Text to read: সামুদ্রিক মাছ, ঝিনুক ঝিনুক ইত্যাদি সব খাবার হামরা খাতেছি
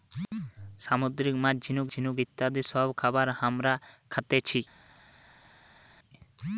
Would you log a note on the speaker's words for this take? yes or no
no